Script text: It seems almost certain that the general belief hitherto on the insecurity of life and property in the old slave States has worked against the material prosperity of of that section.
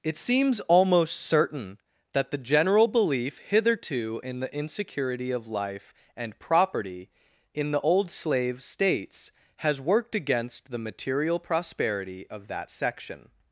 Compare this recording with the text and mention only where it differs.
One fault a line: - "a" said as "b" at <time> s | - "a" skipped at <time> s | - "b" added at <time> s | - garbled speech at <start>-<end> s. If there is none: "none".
- "on" said as "in" at 4.2 s
- "of" skipped at 12.5 s